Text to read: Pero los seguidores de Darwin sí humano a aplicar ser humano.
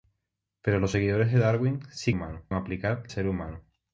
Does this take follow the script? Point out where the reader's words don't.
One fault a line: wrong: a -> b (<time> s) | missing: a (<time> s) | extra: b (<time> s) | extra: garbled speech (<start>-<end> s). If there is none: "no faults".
no faults